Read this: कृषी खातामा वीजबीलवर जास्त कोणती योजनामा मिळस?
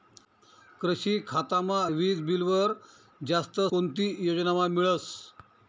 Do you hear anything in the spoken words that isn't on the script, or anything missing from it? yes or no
no